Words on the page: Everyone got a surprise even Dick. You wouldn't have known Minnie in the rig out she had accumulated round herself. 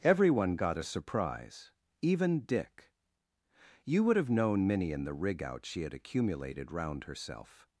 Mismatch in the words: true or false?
true